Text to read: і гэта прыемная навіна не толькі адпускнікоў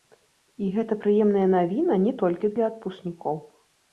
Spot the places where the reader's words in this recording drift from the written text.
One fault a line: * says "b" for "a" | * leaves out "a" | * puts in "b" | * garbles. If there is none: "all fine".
* puts in "для"